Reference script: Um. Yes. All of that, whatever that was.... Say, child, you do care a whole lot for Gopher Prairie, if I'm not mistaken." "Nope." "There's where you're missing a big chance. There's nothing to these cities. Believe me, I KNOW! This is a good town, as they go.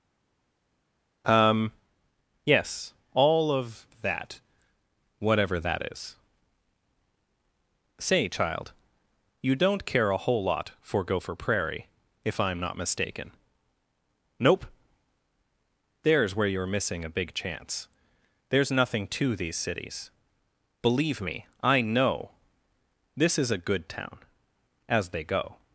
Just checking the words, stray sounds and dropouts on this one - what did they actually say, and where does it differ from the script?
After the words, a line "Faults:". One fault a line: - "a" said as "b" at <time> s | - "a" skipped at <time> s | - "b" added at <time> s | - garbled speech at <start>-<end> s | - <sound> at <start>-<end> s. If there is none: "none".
Um. Yes. All of that, whatever that is.... Say, child, you don't care a whole lot for Gopher Prairie, if I'm not mistaken." "Nope." "There's where you're missing a big chance. There's nothing to these cities. Believe me, I KNOW! This is a good town, as they go.
Faults:
- "was" said as "is" at 5.9 s
- "do" said as "don't" at 9.6 s